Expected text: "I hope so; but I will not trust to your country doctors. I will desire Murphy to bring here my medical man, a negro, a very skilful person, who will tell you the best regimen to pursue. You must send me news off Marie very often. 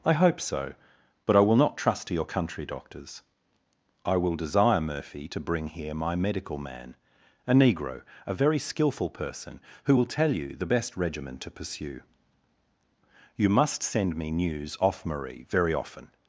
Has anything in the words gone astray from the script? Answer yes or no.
no